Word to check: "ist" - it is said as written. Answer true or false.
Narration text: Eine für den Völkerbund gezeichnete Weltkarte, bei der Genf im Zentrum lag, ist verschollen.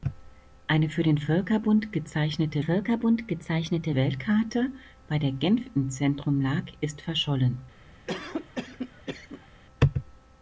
true